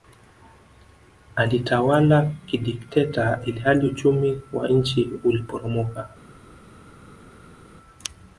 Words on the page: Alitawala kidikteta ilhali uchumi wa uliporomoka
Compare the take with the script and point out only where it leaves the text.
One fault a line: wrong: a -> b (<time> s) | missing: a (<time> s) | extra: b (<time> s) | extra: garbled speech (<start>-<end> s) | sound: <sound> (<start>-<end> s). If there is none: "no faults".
extra: nchi (4.7 s)